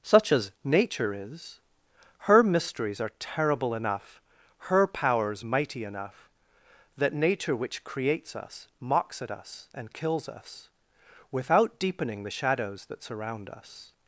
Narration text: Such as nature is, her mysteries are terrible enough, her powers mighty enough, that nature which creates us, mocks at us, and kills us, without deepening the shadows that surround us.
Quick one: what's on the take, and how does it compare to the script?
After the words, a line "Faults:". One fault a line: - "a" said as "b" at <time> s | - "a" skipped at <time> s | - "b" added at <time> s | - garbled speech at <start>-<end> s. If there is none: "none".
Such as nature is, her mysteries are terrible enough, her powers mighty enough, that nature which creates us, mocks at us, and kills us, without deepening the shadows that surround us.
Faults:
none